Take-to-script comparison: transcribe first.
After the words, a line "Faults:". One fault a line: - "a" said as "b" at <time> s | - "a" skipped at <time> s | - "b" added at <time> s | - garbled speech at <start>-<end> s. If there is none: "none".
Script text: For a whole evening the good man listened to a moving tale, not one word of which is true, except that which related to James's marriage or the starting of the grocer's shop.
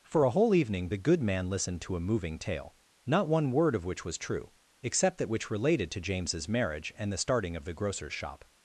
For a whole evening the good man listened to a moving tale, not one word of which was true, except that which related to James's marriage and the starting of the grocer's shop.
Faults:
- "is" said as "was" at 4.0 s
- "or" said as "and" at 7.0 s